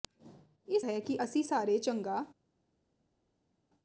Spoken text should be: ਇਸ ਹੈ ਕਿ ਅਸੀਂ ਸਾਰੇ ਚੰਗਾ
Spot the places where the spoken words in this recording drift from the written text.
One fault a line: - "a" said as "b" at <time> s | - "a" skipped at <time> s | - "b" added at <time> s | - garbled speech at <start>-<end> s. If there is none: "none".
none